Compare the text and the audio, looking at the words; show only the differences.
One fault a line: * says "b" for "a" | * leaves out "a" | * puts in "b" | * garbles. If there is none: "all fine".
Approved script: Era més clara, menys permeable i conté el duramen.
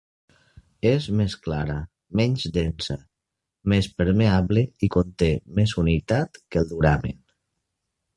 * says "És" for "Era"
* puts in "densa més"
* puts in "més humitat que"